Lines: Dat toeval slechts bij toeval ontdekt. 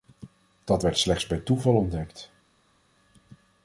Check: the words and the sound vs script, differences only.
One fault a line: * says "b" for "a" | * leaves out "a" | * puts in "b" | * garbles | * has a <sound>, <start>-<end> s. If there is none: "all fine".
* says "werd" for "toeval"